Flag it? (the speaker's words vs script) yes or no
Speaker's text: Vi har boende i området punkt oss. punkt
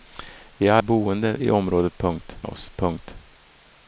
no